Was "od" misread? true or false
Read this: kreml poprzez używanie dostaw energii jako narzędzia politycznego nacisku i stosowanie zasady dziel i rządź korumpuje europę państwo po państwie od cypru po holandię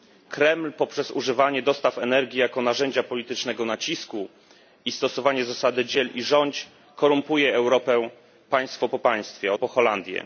true